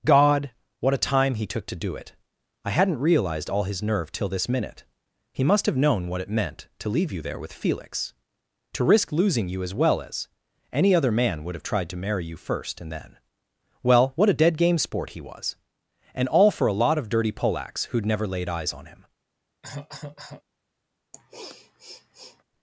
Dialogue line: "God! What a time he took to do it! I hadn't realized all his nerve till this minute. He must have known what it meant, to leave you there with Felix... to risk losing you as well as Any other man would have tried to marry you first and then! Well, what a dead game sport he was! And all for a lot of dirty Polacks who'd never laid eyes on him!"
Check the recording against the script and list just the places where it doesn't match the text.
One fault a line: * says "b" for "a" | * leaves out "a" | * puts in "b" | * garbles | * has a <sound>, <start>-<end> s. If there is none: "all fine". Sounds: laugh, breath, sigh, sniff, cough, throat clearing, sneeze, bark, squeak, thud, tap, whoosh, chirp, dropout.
* has a cough, 19.6-20.4 s
* has a sniff, 21.1-22.4 s